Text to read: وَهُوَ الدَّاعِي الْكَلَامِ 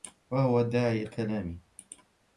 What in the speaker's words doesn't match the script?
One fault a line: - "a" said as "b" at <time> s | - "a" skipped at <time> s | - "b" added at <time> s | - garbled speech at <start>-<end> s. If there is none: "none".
none